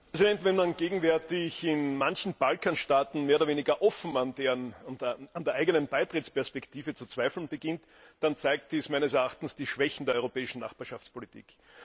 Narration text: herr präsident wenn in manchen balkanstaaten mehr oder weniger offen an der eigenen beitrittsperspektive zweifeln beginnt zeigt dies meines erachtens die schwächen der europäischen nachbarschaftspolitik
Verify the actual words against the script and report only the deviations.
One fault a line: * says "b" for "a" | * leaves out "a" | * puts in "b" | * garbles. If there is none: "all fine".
* puts in "man gegenwärtig"
* puts in "zu"
* puts in "dann"